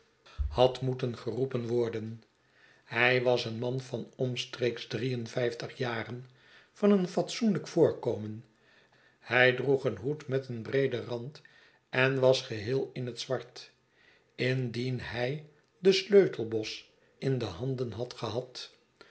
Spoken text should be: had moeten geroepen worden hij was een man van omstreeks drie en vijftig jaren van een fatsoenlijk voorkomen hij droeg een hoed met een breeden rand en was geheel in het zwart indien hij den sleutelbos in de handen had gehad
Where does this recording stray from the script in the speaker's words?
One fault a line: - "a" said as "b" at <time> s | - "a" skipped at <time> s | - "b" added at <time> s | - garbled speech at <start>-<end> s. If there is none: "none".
none